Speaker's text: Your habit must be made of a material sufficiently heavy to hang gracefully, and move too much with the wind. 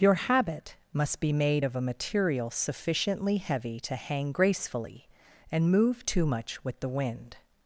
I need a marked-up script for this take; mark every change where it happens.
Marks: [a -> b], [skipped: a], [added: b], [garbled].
Your habit must be made of a material sufficiently heavy to hang gracefully, and move too much with the wind.